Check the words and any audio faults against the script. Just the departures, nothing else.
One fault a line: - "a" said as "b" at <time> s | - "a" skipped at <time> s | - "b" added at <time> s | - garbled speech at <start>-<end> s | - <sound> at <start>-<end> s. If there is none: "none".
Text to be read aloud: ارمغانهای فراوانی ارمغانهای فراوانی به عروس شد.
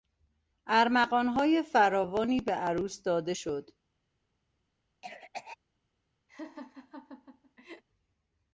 - "ارمغانهای فراوانی" skipped at 2.4 s
- "داده" added at 3.0 s
- cough at 5.0-5.6 s
- laugh at 6.3-7.8 s